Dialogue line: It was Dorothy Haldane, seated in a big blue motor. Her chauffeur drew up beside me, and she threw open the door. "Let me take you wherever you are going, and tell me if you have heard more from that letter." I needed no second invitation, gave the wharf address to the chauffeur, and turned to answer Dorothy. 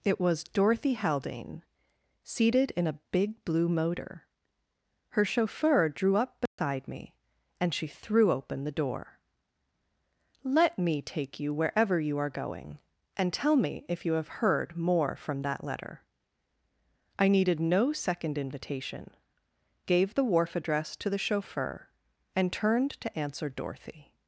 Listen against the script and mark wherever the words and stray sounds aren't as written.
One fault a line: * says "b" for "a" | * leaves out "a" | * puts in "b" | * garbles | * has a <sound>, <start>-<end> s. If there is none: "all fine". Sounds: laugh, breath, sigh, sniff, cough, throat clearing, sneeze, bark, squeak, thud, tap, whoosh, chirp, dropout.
* has a dropout, 6.5-6.6 s